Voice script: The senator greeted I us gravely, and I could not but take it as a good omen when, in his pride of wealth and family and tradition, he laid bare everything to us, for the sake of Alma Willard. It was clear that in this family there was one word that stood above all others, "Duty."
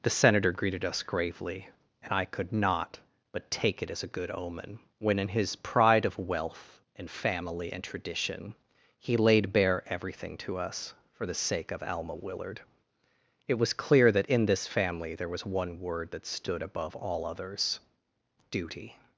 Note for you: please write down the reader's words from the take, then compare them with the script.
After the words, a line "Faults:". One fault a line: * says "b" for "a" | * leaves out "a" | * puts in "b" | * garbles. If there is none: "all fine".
The senator greeted us gravely, and I could not but take it as a good omen when, in his pride of wealth and family and tradition, he laid bare everything to us, for the sake of Alma Willard. It was clear that in this family there was one word that stood above all others, "Duty."
Faults:
* leaves out "I"